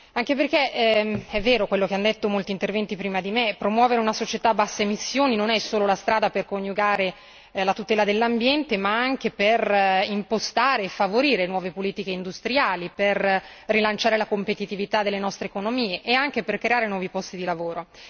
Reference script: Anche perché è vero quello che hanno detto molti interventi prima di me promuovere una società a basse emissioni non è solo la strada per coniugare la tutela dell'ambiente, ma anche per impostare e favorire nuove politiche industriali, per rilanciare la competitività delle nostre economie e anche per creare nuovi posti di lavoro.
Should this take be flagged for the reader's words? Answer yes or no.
no